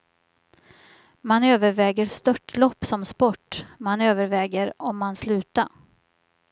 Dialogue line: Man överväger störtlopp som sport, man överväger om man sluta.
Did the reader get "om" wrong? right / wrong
right